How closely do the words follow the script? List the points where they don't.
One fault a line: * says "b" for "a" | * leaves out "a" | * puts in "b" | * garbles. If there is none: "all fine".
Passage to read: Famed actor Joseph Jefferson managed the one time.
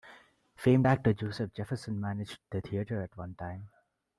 * puts in "theatre at"